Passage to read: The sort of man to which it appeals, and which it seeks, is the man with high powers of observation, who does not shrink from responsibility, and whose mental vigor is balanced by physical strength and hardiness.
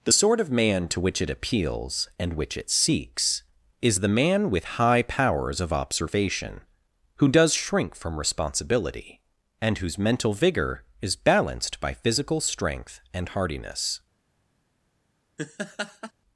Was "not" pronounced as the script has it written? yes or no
no